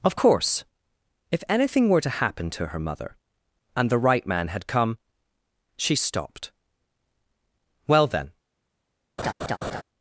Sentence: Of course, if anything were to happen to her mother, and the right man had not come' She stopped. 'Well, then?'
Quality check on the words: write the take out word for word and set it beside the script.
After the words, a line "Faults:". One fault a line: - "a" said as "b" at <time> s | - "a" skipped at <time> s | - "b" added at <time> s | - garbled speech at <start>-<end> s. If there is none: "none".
Of course, if anything were to happen to her mother, and the right man had come' She stopped. 'Well, then?'
Faults:
- "not" skipped at 4.7 s